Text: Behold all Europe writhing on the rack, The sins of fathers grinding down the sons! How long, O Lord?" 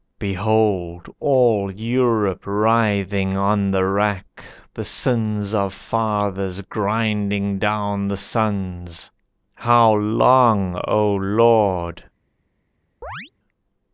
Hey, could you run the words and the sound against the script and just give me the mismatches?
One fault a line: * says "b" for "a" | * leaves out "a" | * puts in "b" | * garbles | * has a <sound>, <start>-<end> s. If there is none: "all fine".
* has a chirp, 13.0-13.3 s